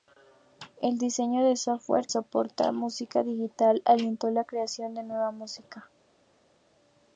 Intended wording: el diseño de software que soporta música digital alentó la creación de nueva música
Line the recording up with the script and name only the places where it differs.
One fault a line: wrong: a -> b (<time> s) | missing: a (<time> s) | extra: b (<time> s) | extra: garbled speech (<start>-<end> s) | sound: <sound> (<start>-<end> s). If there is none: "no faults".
missing: que (2.1 s)